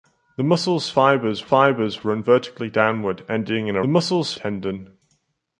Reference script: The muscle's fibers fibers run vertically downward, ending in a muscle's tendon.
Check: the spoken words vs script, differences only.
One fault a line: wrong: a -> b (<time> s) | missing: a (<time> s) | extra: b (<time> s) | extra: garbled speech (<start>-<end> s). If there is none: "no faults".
no faults